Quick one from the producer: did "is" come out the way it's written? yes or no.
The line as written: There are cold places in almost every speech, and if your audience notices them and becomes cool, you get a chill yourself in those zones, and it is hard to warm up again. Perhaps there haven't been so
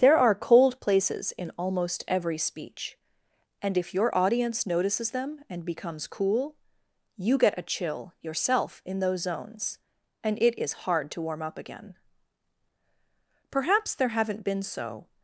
yes